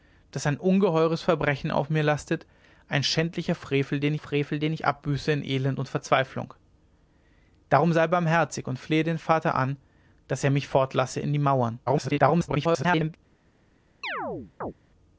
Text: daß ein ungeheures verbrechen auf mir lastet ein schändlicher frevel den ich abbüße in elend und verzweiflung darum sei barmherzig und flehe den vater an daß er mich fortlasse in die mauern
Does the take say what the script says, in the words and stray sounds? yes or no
no